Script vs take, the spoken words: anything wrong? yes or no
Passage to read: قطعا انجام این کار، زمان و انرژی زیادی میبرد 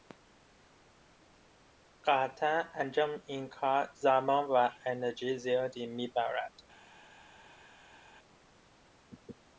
no